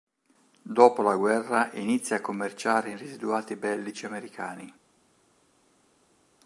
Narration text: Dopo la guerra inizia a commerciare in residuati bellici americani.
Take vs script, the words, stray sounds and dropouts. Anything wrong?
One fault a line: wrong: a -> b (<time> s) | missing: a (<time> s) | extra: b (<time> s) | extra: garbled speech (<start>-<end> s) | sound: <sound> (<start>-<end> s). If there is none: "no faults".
no faults